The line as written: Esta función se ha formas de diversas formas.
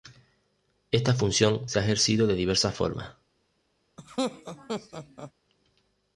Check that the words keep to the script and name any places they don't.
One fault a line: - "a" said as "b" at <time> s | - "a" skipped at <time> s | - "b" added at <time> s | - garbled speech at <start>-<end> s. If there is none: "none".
- "formas" said as "ejercido" at 1.8 s